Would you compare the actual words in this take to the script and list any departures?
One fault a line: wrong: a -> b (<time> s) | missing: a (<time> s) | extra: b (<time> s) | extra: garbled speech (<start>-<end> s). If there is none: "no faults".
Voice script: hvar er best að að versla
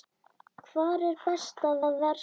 no faults